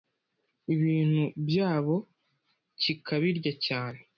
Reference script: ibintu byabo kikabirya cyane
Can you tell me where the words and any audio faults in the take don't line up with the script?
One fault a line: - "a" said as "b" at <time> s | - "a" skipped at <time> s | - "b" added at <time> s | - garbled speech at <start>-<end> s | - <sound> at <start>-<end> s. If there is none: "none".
none